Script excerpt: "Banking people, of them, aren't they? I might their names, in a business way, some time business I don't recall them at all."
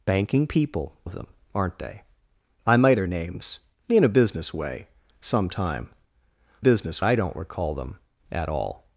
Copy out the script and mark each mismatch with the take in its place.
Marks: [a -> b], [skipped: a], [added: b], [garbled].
"Banking people, of them, aren't they? I might their names, in a business way, some time business I don't recall them at all."